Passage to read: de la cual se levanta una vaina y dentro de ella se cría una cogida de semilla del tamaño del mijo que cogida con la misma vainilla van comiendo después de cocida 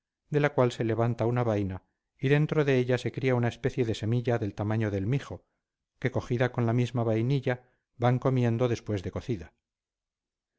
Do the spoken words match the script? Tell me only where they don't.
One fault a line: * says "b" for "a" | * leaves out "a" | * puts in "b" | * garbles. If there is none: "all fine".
* says "especie" for "cogida"